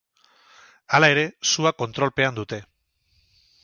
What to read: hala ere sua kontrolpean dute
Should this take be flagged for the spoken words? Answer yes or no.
no